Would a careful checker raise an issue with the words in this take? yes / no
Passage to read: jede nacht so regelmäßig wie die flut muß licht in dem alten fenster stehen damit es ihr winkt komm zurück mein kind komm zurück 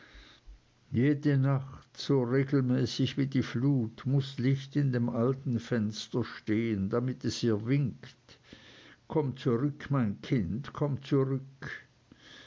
no